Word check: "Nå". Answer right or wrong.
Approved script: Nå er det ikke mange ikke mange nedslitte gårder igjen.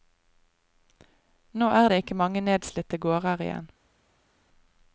right